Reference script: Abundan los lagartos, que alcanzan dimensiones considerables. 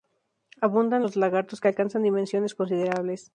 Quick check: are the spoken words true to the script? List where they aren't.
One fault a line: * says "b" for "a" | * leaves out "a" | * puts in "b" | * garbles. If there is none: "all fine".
all fine